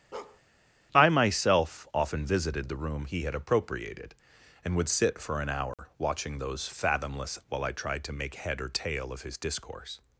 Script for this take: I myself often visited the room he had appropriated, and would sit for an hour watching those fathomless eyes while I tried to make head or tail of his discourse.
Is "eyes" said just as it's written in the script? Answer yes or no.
no